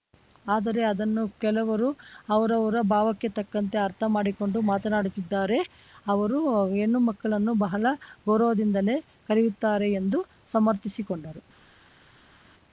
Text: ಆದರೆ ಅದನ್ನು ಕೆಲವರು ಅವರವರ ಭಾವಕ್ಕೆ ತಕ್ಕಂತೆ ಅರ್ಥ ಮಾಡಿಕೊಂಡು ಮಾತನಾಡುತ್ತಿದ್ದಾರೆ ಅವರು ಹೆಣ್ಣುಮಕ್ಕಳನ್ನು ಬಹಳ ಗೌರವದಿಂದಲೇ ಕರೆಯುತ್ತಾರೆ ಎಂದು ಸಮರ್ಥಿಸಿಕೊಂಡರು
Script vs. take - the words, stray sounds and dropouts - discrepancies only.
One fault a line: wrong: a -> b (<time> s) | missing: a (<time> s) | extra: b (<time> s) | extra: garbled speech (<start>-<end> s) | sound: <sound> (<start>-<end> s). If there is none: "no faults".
no faults